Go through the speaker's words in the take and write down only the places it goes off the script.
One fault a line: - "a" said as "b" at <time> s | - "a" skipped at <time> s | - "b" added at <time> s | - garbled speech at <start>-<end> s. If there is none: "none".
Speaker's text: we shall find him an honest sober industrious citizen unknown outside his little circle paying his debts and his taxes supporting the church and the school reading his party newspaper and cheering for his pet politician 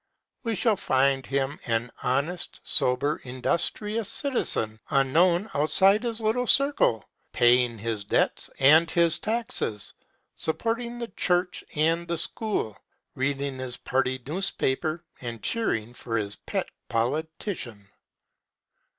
none